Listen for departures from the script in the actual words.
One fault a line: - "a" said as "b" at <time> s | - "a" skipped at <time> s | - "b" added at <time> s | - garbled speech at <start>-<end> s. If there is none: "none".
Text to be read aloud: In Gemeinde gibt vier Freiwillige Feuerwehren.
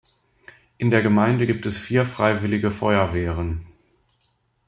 - "der" added at 0.9 s
- "es" added at 1.6 s